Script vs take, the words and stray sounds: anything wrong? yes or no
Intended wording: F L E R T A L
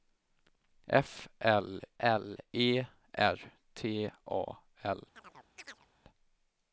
yes